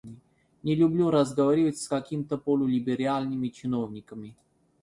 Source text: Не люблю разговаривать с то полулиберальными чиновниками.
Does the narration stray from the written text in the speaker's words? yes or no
yes